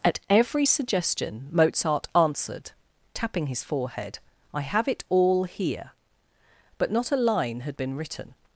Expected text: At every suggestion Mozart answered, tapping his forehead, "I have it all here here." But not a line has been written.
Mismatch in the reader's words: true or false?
true